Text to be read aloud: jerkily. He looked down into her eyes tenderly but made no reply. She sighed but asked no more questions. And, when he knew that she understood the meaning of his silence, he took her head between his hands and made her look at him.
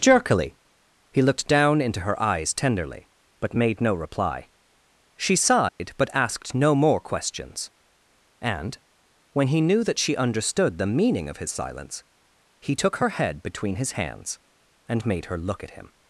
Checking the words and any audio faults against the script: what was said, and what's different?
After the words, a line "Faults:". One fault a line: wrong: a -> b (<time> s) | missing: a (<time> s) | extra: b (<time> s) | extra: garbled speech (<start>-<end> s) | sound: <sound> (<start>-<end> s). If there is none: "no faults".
jerkily. He looked down into her eyes tenderly but made no reply. She sighed but asked no more questions. And, when he knew that she understood the meaning of his silence, he took her head between his hands and made her look at him.
Faults:
sound: dropout (5.7-5.8 s)